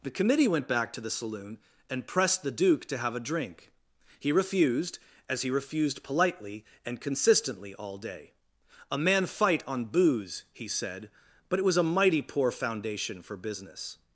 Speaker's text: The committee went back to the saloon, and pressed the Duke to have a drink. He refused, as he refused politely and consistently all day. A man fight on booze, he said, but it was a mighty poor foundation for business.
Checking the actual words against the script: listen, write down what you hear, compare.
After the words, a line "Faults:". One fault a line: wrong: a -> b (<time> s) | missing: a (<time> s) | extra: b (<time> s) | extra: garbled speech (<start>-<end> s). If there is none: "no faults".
The committee went back to the saloon, and pressed the Duke to have a drink. He refused, as he refused politely and consistently all day. A man fight on booze, he said, but it was a mighty poor foundation for business.
Faults:
no faults